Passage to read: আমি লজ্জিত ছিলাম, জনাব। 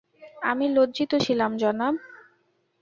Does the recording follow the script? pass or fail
pass